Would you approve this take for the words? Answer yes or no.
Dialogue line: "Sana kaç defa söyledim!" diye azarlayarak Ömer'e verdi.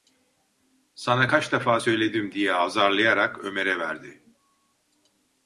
yes